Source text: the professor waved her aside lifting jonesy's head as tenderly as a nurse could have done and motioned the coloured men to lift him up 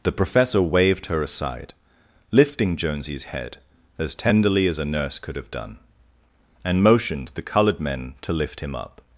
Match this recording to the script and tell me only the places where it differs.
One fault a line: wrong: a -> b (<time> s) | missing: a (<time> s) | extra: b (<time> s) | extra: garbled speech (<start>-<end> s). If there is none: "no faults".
no faults